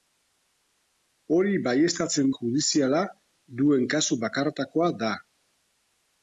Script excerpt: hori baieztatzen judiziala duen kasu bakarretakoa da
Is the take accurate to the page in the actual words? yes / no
yes